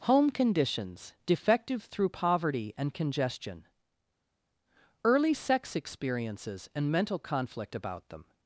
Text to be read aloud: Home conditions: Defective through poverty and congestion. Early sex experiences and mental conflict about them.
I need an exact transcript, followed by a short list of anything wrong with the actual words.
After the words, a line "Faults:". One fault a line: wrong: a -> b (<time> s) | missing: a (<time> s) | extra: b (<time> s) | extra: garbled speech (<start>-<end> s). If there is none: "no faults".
Home conditions: Defective through poverty and congestion. Early sex experiences and mental conflict about them.
Faults:
no faults